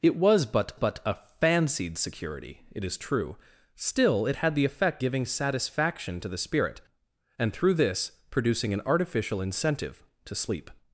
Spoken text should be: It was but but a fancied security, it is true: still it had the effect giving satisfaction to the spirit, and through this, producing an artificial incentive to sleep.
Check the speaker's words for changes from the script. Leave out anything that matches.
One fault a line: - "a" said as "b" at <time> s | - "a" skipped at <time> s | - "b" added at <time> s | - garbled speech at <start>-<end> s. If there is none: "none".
none